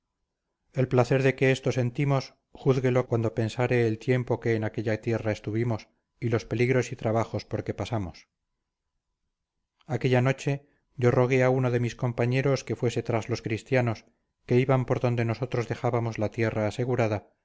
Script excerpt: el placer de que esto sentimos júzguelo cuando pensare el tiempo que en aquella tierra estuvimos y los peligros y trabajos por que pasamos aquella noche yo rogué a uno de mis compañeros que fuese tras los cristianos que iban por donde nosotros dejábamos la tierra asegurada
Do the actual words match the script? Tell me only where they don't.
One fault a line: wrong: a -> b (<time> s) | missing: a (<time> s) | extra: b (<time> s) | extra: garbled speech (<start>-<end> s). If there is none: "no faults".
no faults